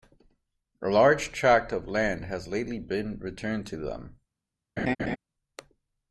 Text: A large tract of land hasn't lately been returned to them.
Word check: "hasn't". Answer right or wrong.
wrong